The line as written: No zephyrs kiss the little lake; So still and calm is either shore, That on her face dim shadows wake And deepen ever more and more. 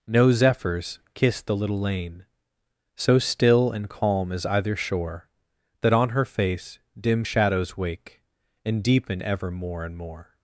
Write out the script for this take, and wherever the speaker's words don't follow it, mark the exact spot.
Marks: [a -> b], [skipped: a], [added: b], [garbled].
No zephyrs kiss the little [lake; -> lane] So still and calm is either shore, That on her face dim shadows wake And deepen ever more and more.